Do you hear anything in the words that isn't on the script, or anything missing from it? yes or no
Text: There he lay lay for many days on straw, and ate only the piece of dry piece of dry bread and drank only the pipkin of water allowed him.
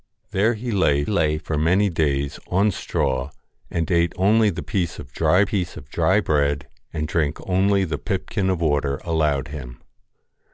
no